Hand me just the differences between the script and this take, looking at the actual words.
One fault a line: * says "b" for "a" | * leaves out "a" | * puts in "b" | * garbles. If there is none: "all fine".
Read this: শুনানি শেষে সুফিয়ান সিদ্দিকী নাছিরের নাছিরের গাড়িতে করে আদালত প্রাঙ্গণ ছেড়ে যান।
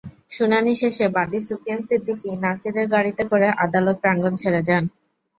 * puts in "বাদী"
* leaves out "নাছিরের"